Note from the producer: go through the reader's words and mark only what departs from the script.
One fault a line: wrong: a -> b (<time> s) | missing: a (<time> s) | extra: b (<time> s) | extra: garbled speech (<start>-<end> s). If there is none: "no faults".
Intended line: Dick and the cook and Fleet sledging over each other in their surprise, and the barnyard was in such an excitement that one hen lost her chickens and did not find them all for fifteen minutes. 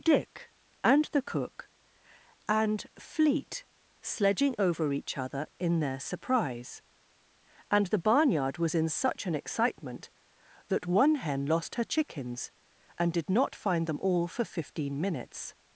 no faults